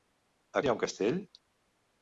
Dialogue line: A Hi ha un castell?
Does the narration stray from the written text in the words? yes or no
no